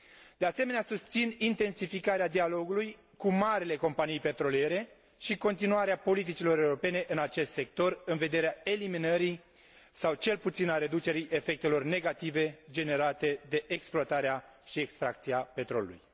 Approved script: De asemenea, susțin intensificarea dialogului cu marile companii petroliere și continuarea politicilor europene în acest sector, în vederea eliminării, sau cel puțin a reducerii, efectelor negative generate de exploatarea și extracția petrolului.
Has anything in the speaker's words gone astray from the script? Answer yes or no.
no